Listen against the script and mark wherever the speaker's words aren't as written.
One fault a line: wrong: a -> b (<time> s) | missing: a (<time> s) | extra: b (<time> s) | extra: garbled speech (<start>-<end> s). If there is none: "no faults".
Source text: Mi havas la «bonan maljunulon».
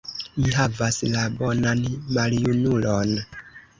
no faults